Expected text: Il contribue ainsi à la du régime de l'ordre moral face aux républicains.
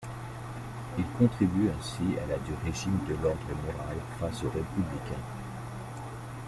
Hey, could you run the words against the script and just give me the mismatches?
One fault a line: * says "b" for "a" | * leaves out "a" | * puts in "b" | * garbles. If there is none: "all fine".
all fine